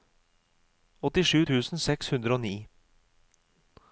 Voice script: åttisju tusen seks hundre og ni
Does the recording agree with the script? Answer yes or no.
yes